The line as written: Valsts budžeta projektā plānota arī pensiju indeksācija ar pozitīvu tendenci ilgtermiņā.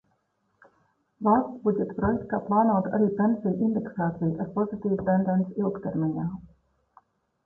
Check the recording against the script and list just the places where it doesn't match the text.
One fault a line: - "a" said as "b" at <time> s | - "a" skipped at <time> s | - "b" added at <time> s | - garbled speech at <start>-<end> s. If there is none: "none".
none